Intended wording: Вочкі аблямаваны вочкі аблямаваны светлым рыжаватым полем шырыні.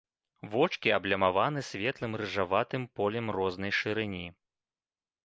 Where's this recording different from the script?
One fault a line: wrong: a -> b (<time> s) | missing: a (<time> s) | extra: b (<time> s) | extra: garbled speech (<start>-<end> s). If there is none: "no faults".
missing: вочкі аблямаваны (1.6 s)
extra: рознай (3.4 s)